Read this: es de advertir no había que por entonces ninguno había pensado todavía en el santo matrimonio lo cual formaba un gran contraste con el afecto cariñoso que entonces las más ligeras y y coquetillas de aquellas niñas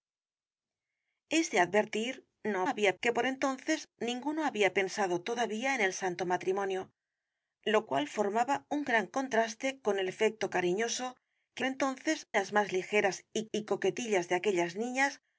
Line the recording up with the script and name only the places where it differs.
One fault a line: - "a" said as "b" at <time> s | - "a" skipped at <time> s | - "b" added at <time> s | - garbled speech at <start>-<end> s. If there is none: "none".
none